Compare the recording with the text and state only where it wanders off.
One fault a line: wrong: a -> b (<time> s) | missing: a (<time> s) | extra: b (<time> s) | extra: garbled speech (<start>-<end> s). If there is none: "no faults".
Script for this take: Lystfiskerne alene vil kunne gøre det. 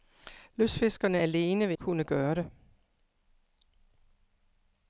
no faults